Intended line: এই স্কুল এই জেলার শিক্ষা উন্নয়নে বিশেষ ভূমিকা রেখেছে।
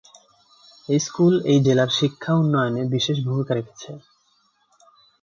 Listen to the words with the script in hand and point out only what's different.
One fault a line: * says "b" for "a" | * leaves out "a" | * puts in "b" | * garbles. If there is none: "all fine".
all fine